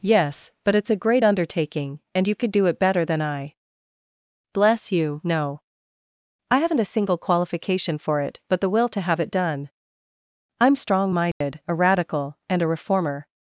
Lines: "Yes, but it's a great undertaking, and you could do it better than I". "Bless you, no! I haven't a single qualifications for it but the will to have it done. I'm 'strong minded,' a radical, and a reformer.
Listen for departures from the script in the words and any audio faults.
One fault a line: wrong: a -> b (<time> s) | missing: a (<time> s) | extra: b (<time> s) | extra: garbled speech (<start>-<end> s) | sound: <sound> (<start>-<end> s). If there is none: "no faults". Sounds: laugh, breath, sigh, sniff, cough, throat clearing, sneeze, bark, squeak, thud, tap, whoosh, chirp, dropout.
wrong: qualifications -> qualification (7.2 s)
sound: dropout (11.3-11.4 s)